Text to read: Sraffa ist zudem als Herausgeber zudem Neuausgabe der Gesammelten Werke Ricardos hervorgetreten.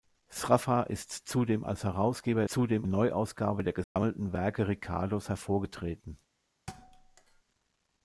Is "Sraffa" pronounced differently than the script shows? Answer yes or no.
no